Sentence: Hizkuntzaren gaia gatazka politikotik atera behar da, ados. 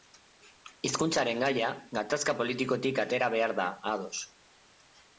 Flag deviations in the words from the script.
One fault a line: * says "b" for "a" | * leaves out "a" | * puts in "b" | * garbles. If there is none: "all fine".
all fine